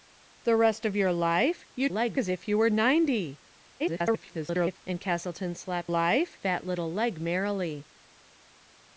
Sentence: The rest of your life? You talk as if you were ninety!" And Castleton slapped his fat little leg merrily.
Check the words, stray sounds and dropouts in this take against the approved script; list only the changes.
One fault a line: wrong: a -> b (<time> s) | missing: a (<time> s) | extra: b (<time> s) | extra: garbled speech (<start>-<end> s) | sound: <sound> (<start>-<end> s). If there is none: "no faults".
wrong: talk -> leg (1.9 s)
extra: garbled speech (3.8-4.8 s)
wrong: his -> life (5.9 s)